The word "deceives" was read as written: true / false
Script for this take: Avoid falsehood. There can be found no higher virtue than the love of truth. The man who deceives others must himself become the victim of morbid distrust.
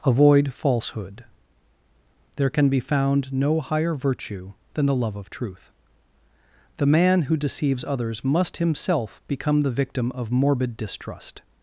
true